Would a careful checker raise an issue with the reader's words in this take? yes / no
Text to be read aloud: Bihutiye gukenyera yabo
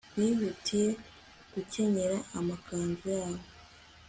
yes